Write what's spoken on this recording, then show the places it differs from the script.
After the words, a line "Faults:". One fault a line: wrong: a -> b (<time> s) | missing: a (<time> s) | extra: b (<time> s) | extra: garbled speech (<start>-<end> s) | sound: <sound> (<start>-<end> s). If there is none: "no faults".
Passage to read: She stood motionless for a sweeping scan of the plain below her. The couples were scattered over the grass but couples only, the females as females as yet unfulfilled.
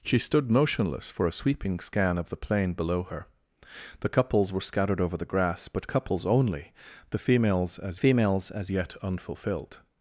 She stood motionless for a sweeping scan of the plain below her. The couples were scattered over the grass but couples only, the females as females as yet unfulfilled.
Faults:
no faults